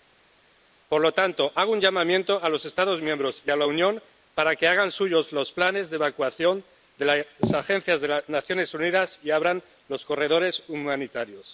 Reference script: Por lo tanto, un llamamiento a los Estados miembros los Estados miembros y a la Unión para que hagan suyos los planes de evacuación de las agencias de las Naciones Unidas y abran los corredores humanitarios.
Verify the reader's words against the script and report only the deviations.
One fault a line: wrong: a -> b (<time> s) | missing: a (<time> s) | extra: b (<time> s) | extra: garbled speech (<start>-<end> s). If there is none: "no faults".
extra: hago (1.5 s)
missing: los Estados miembros (3.4 s)